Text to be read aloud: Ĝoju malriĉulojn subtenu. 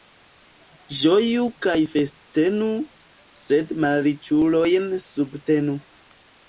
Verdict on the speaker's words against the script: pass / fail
fail